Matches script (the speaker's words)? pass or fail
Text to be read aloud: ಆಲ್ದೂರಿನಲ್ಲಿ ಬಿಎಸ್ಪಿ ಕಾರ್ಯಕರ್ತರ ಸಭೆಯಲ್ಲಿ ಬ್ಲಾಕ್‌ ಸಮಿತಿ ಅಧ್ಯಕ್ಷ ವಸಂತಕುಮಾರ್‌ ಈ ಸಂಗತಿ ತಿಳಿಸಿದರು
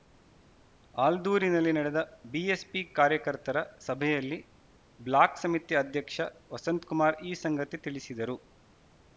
fail